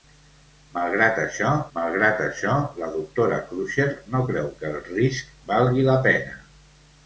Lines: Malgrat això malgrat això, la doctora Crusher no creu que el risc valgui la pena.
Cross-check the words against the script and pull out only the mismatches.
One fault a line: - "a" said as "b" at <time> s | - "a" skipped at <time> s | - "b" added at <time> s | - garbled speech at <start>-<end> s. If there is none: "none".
none